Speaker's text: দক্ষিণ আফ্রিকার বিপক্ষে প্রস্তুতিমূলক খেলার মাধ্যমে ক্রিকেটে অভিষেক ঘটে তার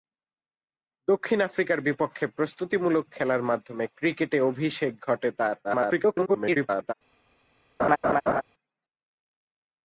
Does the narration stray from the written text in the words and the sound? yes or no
yes